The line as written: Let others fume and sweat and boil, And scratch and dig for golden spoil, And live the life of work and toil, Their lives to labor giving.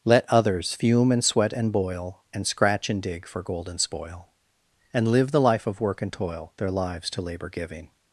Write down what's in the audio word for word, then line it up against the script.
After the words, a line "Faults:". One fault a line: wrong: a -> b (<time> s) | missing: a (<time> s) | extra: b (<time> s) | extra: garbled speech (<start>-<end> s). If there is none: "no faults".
Let others fume and sweat and boil, And scratch and dig for golden spoil, And live the life of work and toil, Their lives to labor giving.
Faults:
no faults